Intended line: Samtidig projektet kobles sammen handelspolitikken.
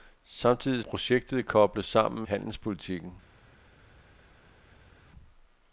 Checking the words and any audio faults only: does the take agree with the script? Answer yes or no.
yes